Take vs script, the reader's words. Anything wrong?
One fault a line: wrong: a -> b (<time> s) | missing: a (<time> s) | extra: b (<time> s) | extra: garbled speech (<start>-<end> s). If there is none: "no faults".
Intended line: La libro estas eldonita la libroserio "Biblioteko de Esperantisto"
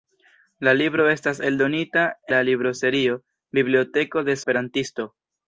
no faults